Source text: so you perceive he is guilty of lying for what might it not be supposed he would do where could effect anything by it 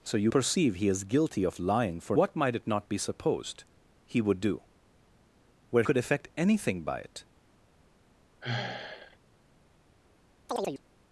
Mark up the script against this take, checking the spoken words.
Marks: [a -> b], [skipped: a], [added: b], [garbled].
so you perceive he is guilty of lying for what might it not be supposed he would do where could effect anything by it